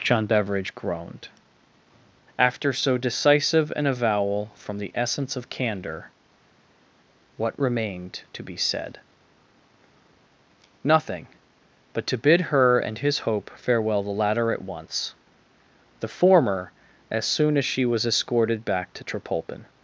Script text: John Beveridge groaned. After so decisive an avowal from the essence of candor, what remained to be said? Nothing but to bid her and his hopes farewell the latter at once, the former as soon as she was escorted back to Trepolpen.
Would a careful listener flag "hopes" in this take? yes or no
yes